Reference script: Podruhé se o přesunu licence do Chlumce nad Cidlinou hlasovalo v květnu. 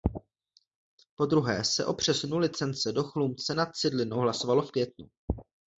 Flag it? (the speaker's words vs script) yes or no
no